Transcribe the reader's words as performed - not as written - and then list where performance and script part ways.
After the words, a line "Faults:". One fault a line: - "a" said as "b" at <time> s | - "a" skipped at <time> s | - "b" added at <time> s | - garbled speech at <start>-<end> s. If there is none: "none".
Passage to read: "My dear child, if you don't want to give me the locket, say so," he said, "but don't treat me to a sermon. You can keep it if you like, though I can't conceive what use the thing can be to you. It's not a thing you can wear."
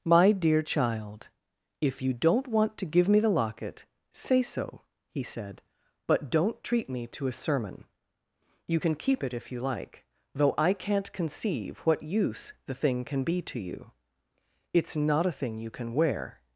"My dear child, if you don't want to give me the locket, say so," he said, "but don't treat me to a sermon. You can keep it if you like, though I can't conceive what use the thing can be to you. It's not a thing you can wear."
Faults:
none